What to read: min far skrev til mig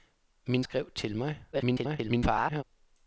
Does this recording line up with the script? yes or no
no